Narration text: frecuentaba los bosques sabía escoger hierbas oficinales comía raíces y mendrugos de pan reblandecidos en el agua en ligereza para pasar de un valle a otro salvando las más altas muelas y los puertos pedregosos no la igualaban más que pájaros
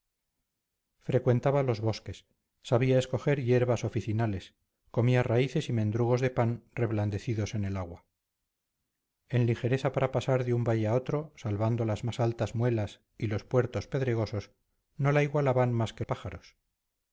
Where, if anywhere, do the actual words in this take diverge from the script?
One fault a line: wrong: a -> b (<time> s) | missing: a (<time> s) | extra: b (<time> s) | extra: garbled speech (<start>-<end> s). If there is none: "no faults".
no faults